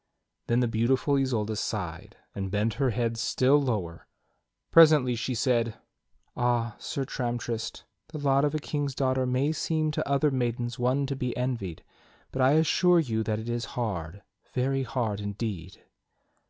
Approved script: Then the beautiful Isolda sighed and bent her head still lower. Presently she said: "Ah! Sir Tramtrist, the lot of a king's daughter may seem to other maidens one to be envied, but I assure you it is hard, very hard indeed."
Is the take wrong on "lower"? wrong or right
right